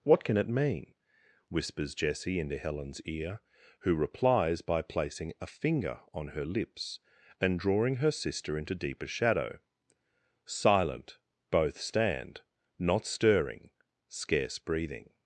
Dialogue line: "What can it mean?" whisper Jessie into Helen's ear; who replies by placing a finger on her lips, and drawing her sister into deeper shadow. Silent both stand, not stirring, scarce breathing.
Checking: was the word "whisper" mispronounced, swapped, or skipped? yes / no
yes